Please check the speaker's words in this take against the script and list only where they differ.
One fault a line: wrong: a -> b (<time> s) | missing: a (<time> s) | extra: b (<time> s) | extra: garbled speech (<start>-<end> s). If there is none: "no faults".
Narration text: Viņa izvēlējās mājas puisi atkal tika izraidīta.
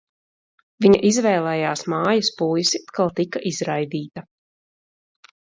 no faults